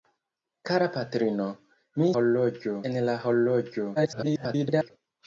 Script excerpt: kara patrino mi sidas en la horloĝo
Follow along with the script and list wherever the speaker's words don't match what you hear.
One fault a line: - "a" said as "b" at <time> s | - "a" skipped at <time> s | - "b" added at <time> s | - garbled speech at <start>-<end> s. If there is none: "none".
- "sidas" said as "horloĝo" at 2.2 s
- garbled speech at 4.0-4.9 s